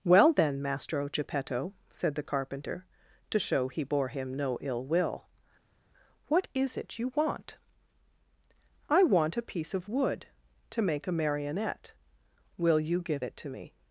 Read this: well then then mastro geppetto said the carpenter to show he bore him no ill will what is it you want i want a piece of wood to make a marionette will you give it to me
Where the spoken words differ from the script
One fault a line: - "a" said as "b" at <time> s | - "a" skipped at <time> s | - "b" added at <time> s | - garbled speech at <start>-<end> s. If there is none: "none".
- "then" skipped at 0.6 s